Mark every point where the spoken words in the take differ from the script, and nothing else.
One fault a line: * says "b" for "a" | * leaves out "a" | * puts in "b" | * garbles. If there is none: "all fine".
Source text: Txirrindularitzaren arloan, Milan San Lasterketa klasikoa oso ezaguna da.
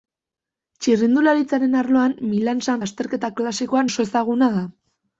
all fine